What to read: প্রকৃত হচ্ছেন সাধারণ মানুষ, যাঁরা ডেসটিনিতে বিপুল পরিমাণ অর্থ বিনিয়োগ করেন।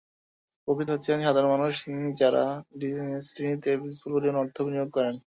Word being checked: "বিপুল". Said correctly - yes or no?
yes